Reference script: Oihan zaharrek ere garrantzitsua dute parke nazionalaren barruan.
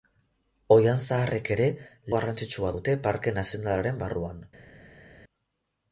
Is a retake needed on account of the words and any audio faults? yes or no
no